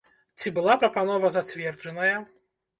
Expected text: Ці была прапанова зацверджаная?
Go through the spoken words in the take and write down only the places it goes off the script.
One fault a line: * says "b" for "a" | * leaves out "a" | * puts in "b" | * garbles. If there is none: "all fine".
all fine